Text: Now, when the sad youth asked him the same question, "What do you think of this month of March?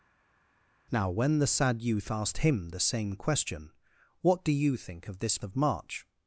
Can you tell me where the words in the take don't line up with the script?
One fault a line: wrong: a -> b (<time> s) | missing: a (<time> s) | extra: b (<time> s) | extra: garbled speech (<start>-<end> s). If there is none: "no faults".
missing: month (5.4 s)